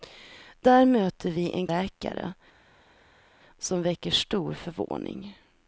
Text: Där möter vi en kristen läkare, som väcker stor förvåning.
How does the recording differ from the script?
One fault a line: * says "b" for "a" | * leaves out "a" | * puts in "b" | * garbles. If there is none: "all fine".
* leaves out "kristen"